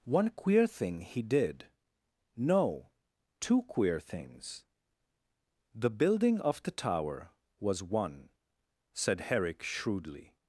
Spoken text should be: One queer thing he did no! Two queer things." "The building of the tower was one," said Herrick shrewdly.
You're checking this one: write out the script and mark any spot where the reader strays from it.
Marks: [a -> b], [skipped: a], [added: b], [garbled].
One queer thing he did no! Two queer things." "The building of the tower was one," said Herrick shrewdly.